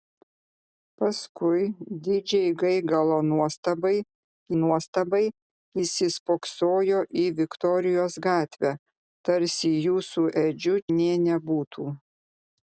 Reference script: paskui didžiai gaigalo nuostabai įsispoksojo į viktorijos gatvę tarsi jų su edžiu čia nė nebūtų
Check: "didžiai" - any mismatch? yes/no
no